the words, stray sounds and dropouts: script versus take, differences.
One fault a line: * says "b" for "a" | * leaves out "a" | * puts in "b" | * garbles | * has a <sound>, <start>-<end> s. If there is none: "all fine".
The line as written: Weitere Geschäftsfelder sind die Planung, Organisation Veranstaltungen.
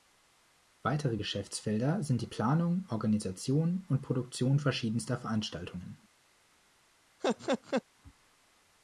* puts in "und Produktion verschiedenster"
* has a laugh, 7.2-7.8 s